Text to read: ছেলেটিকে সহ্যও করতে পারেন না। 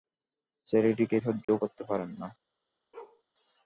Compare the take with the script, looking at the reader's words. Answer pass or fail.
pass